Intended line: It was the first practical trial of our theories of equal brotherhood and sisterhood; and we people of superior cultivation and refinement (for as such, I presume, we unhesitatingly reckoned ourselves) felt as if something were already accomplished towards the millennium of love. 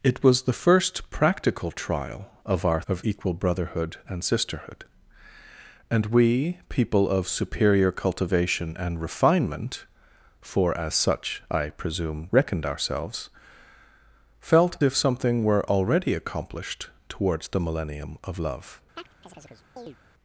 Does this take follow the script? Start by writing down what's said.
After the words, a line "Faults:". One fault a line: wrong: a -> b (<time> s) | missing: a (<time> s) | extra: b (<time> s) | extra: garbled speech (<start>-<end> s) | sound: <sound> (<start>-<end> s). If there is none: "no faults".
It was the first practical trial of our of equal brotherhood and sisterhood; and we people of superior cultivation and refinement (for as such, I presume, reckoned ourselves) felt if something were already accomplished towards the millennium of love.
Faults:
missing: theories (2.8 s)
missing: we unhesitatingly (12.3 s)
missing: as (14.8 s)
sound: chirp (19.0-20.0 s)